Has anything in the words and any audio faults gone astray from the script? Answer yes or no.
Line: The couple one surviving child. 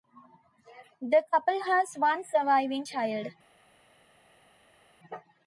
yes